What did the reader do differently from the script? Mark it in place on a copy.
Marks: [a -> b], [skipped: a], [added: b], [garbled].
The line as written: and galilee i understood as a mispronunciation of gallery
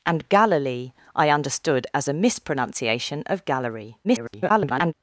and galilee i understood as a mispronunciation of gallery [garbled]